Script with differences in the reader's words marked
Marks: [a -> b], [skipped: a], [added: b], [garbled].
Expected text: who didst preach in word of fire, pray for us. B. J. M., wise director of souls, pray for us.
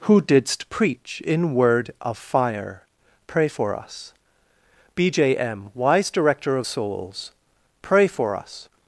who didst preach in word of fire, pray for us. B. J. M., wise director of souls, pray for us.